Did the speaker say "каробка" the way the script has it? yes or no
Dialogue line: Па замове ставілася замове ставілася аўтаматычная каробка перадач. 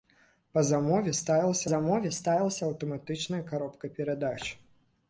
yes